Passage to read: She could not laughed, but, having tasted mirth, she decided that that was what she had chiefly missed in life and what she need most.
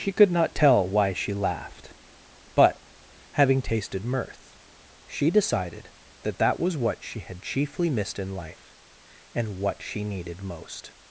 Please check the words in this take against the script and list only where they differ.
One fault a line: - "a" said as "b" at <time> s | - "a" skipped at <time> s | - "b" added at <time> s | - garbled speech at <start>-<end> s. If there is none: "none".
- "tell why she" added at 0.6 s
- "need" said as "needed" at 10.0 s